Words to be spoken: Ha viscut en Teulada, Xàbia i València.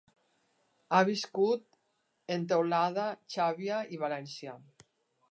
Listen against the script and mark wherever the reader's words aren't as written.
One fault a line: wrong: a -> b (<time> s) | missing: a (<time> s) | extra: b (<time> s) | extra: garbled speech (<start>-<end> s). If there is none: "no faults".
no faults